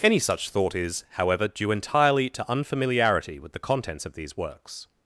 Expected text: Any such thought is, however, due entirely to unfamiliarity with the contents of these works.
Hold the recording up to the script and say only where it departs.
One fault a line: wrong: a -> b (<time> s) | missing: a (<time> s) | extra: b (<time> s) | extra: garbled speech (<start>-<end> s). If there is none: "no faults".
no faults